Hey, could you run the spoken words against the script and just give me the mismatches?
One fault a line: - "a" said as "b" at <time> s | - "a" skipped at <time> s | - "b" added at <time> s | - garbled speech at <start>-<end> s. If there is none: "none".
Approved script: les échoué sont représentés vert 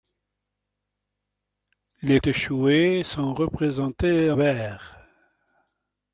none